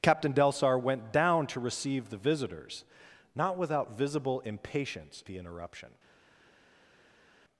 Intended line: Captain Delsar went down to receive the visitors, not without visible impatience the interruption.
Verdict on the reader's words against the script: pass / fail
pass